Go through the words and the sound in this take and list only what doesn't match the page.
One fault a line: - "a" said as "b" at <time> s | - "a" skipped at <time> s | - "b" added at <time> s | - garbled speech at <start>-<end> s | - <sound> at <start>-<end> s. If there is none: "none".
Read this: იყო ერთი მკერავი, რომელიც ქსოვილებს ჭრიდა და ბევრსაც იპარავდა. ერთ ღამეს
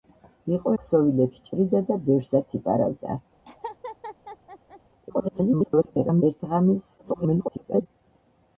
- "ერთი მკერავი რომელიც" skipped at 0.7 s
- laugh at 3.5-4.8 s
- garbled speech at 5.1-6.2 s
- garbled speech at 7.0-7.9 s